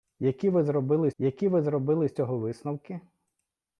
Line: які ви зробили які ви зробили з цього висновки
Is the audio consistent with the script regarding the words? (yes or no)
yes